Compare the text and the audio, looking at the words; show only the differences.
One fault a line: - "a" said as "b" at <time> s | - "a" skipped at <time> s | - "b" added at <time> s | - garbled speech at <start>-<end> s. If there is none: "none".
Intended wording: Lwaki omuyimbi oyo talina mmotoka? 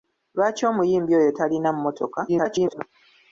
- garbled speech at 2.3-2.8 s